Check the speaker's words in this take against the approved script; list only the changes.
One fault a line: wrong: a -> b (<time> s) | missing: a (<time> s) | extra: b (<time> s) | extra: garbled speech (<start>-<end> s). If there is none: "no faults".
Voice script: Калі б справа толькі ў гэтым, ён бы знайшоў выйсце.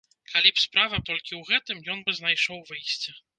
no faults